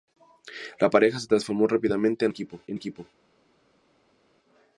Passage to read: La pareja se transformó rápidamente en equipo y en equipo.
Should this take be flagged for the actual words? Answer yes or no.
no